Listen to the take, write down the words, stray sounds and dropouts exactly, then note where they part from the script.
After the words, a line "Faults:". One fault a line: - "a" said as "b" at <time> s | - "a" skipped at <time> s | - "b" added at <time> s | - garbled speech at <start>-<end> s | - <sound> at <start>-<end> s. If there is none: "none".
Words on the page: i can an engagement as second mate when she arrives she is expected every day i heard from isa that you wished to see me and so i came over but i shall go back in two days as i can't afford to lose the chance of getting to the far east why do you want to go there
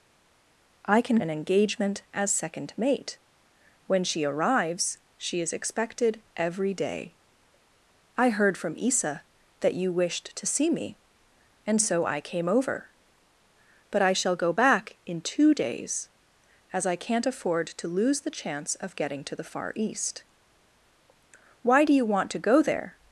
i can an engagement as second mate when she arrives she is expected every day i heard from isa that you wished to see me and so i came over but i shall go back in two days as i can't afford to lose the chance of getting to the far east why do you want to go there
Faults:
none